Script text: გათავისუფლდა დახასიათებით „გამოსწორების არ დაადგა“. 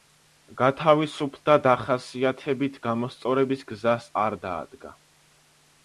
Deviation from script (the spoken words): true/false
true